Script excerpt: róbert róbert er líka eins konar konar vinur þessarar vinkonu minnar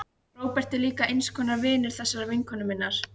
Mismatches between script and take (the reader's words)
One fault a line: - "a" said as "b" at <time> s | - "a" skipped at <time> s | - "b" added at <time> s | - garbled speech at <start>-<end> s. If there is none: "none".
- "róbert" skipped at 0.7 s
- "konar" skipped at 1.6 s